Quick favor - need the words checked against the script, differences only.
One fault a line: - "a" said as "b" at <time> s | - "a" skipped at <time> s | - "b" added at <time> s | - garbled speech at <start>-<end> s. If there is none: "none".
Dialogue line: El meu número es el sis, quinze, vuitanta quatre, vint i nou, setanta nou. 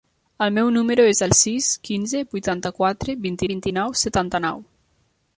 - "vint" added at 3.5 s